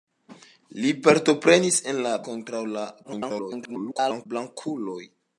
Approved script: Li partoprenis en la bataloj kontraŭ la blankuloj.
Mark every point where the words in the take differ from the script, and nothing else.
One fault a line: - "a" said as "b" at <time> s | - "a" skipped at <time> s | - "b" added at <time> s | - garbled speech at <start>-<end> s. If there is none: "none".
- "bataloj" skipped at 2.1 s
- garbled speech at 3.0-4.3 s